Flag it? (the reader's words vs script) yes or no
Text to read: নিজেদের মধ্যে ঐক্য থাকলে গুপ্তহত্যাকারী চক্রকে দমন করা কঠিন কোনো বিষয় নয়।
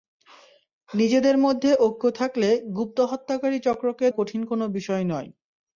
yes